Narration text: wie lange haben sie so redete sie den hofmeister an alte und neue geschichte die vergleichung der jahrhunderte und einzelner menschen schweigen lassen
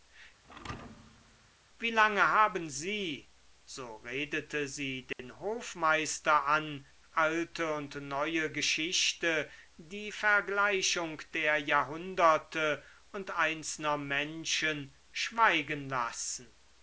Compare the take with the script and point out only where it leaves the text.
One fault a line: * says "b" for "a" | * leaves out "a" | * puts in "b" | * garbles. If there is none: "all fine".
all fine